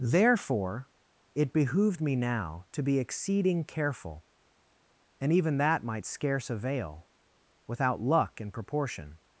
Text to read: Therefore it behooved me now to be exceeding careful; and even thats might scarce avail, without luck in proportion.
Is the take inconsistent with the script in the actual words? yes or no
yes